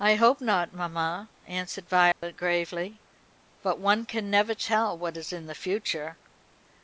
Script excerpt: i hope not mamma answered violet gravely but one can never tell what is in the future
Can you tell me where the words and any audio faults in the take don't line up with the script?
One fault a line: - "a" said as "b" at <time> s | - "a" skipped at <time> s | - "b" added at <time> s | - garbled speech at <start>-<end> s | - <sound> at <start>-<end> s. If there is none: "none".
- dropout at 2.1-2.2 s